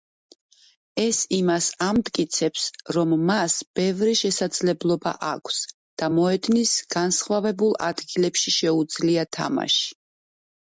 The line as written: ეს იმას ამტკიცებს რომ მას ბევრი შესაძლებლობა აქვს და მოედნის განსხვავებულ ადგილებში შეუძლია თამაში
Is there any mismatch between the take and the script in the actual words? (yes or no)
no